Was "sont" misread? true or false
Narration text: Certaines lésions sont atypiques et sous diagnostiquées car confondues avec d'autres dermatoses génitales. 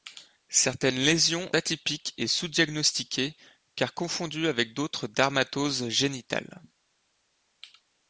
true